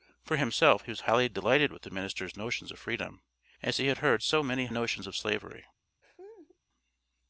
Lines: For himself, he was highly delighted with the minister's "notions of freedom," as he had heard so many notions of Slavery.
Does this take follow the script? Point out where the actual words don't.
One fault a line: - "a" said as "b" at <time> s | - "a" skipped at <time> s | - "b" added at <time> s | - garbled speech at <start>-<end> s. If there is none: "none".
none